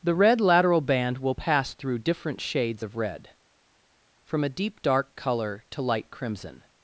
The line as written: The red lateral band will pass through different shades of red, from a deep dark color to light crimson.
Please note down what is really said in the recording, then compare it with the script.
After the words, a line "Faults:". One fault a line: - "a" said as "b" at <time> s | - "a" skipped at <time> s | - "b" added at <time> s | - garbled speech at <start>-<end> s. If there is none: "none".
The red lateral band will pass through different shades of red, from a deep dark color to light crimson.
Faults:
none